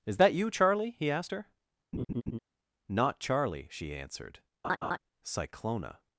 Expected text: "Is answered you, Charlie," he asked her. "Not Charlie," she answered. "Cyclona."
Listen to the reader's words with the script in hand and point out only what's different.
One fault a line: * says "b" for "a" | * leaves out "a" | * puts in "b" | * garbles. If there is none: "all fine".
* says "that" for "answered"